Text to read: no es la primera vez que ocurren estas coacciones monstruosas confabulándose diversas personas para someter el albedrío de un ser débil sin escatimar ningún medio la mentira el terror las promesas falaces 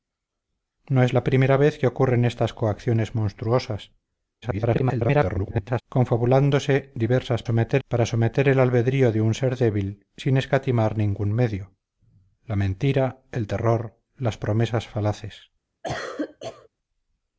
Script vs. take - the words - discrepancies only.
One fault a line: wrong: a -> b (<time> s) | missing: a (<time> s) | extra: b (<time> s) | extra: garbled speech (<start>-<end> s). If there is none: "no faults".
extra: garbled speech (4.4-5.8 s)
wrong: personas -> someter (7.4 s)